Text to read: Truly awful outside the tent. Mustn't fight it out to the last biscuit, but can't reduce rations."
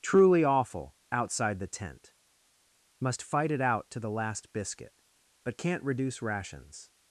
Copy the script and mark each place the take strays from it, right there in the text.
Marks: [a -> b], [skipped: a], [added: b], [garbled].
Truly awful outside the tent. [Mustn't -> Must] fight it out to the last biscuit, but can't reduce rations."